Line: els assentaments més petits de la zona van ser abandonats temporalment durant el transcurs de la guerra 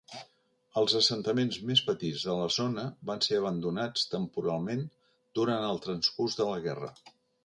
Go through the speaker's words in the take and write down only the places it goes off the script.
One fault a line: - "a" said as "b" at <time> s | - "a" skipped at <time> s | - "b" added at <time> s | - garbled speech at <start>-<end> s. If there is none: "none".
none